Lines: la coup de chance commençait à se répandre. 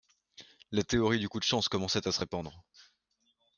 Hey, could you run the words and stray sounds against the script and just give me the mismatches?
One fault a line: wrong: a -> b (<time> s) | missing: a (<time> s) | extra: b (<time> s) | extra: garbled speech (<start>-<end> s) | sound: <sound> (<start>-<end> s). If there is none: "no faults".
extra: théorie du (0.8 s)